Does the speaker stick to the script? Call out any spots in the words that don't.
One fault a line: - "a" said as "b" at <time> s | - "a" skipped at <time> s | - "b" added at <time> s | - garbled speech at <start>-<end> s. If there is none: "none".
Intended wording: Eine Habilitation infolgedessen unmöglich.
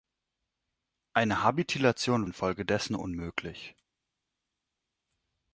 none